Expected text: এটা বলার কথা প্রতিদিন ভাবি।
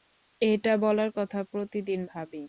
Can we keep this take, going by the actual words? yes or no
yes